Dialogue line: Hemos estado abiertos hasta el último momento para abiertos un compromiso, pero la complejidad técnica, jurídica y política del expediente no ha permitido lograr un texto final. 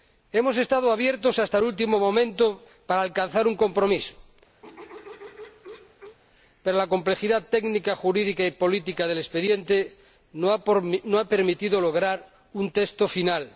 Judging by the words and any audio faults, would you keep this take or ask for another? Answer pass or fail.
fail